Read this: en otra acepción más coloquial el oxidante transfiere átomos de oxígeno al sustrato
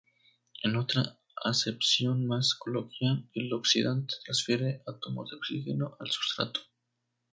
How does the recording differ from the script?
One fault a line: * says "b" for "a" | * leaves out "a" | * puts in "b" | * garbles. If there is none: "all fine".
all fine